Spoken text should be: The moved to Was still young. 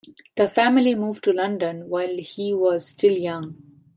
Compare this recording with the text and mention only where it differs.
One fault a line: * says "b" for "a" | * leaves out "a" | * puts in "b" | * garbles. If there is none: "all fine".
* puts in "family"
* puts in "London while he"